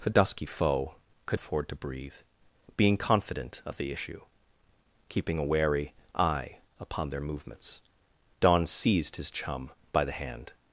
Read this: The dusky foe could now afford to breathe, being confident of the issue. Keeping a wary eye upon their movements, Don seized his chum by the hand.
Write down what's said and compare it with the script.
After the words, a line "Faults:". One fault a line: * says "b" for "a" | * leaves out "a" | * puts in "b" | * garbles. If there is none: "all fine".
The dusky foe could afford to breathe, being confident of the issue. Keeping a wary eye upon their movements, Don seized his chum by the hand.
Faults:
* leaves out "now"